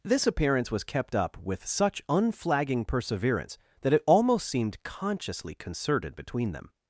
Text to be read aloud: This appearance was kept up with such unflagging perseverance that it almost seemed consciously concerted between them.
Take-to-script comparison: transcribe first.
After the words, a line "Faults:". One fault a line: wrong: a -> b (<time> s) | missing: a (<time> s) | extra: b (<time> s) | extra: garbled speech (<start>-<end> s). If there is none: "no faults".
This appearance was kept up with such unflagging perseverance that it almost seemed consciously concerted between them.
Faults:
no faults